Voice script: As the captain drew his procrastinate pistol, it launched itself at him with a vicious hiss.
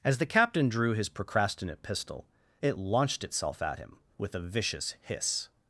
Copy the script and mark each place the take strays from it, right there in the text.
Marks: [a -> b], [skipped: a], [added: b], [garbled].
As the captain drew his procrastinate pistol, it launched itself at him with a vicious hiss.